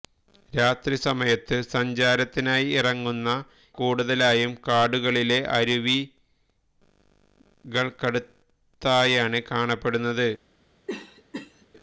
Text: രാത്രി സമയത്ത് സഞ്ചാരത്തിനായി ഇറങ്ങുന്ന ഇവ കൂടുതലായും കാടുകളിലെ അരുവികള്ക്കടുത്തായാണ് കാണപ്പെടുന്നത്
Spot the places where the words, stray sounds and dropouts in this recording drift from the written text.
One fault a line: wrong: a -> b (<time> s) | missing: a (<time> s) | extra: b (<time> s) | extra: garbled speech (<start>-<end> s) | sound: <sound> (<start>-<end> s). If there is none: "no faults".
missing: ഇവ (3.3 s)
sound: cough (10.9-11.7 s)